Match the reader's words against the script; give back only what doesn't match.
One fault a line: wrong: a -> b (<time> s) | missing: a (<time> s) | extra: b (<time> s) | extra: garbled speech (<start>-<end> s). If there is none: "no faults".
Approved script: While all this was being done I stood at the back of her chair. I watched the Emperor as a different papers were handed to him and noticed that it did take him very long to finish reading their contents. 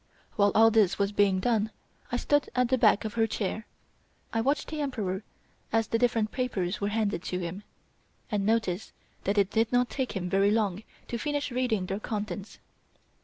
wrong: a -> the (5.9 s)
extra: not (9.7 s)